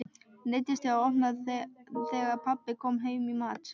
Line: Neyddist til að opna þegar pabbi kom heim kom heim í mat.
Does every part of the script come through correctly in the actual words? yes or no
no